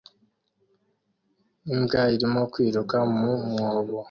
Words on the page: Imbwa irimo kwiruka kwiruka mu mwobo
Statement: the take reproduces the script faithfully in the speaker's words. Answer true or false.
false